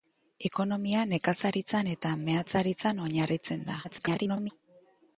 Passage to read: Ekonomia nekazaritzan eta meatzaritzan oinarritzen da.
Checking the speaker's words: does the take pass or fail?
fail